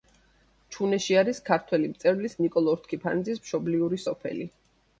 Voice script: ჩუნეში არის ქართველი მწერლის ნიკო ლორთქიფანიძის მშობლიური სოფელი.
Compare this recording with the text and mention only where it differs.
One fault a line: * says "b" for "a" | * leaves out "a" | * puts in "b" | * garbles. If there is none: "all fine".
all fine